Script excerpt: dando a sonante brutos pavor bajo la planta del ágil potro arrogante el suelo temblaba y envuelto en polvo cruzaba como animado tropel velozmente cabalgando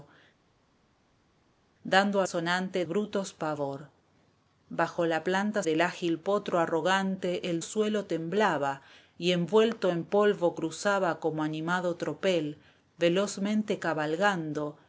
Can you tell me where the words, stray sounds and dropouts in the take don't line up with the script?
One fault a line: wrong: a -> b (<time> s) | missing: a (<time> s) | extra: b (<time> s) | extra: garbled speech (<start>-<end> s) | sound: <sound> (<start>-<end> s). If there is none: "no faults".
no faults